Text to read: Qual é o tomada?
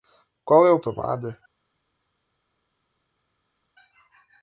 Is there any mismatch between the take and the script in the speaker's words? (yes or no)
no